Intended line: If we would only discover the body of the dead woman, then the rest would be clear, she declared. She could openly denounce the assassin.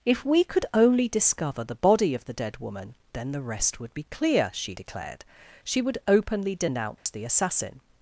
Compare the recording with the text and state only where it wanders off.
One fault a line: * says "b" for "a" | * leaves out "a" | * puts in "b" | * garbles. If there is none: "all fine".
* says "could" for "would"
* says "would" for "could"